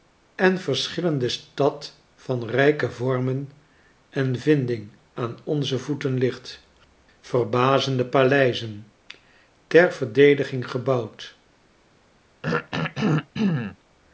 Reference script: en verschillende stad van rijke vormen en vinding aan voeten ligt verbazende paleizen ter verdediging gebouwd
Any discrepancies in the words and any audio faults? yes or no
yes